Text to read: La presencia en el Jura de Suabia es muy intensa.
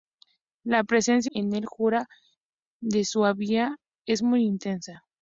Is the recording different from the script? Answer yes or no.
no